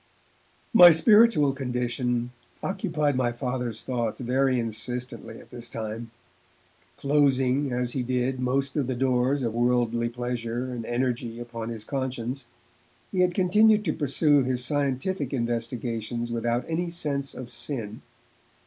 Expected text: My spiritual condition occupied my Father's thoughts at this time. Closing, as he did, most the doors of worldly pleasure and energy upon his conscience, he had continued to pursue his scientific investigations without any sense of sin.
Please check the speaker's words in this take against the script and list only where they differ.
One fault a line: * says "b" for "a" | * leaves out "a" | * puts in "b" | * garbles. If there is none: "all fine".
* puts in "very insistently"
* puts in "of"